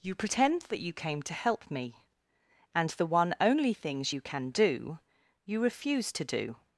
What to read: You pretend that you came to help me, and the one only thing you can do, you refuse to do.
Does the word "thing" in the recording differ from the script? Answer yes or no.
yes